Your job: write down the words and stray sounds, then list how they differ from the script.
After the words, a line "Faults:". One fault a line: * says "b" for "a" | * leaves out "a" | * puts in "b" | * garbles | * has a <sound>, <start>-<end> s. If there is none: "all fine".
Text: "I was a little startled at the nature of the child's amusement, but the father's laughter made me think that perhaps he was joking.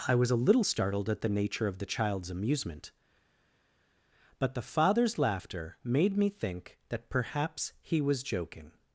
"I was a little startled at the nature of the child's amusement, but the father's laughter made me think that perhaps he was joking.
Faults:
all fine